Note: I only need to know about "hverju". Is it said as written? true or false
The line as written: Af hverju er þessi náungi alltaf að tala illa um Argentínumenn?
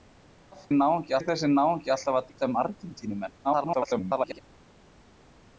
false